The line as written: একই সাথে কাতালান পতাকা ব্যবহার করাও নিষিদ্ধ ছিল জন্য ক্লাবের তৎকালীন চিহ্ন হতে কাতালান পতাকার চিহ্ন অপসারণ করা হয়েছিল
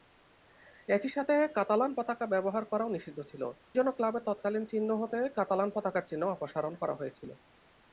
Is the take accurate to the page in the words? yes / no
yes